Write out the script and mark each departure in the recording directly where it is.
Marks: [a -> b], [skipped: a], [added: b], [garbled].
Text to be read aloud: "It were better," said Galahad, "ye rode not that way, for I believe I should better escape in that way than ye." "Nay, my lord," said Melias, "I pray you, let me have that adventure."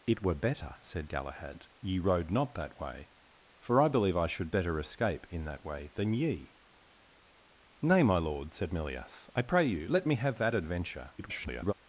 "It were better," said Galahad, "ye rode not that way, for I believe I should better escape in that way than ye." "Nay, my lord," said Melias, "I pray you, let me have that adventure." [garbled]